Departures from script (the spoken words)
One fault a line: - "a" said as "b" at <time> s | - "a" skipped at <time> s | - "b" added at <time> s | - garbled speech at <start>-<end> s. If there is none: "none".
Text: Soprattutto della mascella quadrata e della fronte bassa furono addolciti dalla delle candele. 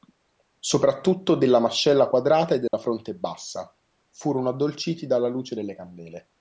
- "luce" added at 5.3 s